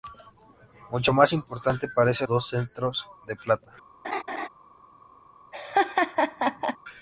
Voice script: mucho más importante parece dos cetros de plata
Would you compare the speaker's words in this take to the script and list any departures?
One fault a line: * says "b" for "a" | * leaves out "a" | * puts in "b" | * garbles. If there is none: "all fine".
all fine